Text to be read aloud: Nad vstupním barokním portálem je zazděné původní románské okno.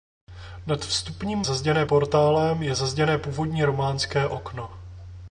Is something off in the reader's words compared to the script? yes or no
yes